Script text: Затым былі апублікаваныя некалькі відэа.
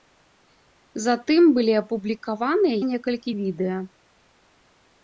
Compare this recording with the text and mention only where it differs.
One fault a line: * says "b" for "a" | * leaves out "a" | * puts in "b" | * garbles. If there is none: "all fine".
all fine